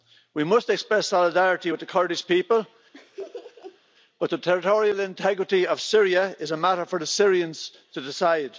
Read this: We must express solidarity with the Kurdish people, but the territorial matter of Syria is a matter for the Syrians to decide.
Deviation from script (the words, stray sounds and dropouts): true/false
true